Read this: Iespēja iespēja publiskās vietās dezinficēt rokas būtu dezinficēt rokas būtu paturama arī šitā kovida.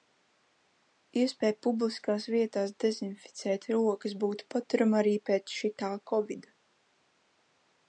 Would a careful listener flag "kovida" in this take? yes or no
no